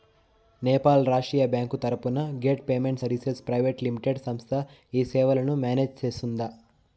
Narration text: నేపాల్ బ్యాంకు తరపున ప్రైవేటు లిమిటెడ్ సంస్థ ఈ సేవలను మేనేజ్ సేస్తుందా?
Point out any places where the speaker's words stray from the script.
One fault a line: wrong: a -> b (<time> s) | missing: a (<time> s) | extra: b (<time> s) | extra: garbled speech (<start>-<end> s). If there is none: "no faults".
extra: రాష్ట్రీయ (1.1 s)
extra: గేట్ పేమెంట్ సర్వీసెస్ (2.5 s)